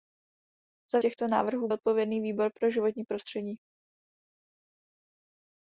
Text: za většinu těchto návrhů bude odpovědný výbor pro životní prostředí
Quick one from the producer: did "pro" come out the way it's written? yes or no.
yes